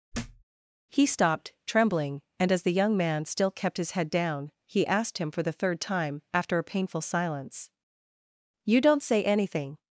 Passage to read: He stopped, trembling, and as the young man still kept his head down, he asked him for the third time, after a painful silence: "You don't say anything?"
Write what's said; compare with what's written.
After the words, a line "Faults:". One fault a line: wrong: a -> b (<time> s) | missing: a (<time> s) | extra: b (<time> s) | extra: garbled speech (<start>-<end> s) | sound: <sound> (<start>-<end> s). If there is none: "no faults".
He stopped, trembling, and as the young man still kept his head down, he asked him for the third time, after a painful silence: "You don't say anything?"
Faults:
sound: thud (0.1-0.4 s)